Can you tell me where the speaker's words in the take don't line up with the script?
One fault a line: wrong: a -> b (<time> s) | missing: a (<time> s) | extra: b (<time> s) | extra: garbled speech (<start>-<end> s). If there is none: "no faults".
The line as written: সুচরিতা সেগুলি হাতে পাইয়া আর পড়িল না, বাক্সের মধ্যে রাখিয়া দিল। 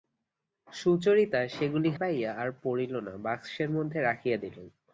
missing: হাতে (1.9 s)